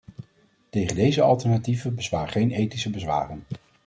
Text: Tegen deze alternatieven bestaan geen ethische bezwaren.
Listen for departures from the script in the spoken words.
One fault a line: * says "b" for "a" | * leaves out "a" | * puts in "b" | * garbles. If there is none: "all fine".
all fine